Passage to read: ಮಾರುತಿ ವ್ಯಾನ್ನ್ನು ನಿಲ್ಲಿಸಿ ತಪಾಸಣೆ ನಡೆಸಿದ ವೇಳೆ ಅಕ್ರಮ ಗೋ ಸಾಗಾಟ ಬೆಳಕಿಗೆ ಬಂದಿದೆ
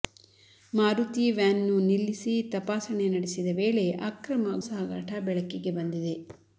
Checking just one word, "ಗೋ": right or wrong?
wrong